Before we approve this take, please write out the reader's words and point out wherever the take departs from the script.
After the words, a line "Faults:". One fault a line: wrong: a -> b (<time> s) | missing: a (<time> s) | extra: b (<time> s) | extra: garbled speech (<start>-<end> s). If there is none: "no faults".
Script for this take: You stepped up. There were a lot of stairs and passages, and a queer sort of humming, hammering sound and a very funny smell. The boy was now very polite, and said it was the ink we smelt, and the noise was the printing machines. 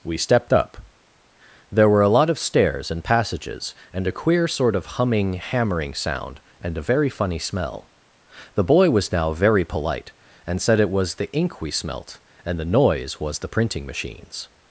We stepped up. There were a lot of stairs and passages, and a queer sort of humming, hammering sound and a very funny smell. The boy was now very polite, and said it was the ink we smelt, and the noise was the printing machines.
Faults:
wrong: You -> We (0.0 s)